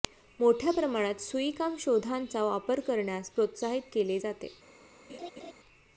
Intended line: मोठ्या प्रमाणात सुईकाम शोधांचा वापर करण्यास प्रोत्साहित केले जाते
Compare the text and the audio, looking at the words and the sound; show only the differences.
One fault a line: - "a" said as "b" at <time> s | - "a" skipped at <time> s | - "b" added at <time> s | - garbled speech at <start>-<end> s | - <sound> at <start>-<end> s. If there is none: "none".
- laugh at 5.1-5.5 s